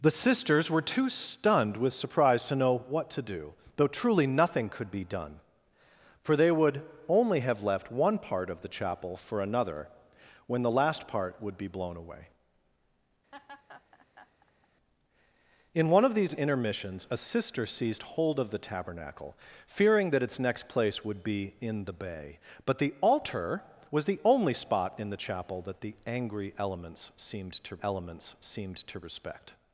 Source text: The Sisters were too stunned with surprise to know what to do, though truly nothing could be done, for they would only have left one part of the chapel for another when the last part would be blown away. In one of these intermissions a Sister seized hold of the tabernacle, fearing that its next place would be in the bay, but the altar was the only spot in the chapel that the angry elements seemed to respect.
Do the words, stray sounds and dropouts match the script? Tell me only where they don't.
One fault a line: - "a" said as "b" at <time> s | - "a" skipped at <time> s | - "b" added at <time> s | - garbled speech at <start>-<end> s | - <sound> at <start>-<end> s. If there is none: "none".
- laugh at 13.3-14.7 s
- "elements seemed to" added at 27.8 s